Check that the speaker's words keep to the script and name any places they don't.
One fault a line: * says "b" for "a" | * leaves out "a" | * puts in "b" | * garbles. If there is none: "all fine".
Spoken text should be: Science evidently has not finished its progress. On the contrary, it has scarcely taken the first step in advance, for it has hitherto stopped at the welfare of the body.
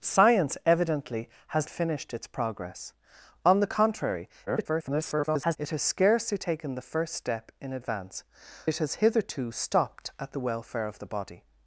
* leaves out "not"
* garbles
* leaves out "for"